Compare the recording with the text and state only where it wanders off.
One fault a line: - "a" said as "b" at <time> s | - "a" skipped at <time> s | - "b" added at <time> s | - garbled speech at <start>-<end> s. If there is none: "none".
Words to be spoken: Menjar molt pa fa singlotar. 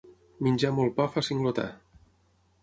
none